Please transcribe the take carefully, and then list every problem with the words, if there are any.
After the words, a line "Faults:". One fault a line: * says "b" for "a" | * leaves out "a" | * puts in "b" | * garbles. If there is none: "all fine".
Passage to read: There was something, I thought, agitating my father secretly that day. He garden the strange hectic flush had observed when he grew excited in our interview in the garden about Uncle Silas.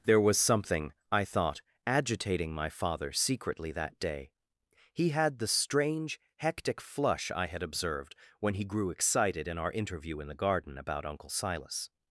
There was something, I thought, agitating my father secretly that day. He had the strange hectic flush I had observed when he grew excited in our interview in the garden about Uncle Silas.
Faults:
* says "had" for "garden"
* puts in "I"